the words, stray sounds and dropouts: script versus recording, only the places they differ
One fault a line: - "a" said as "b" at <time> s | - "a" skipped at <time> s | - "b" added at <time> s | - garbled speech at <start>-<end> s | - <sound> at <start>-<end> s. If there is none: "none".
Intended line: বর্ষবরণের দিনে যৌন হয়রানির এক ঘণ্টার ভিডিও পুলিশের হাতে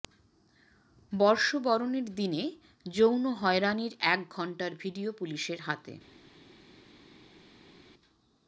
none